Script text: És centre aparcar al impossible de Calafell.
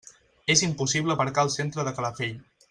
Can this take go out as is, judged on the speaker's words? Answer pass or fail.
fail